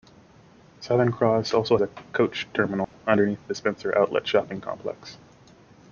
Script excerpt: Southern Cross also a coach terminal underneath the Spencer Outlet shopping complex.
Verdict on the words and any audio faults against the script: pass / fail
fail